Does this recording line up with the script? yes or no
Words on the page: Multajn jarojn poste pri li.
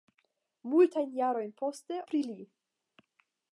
yes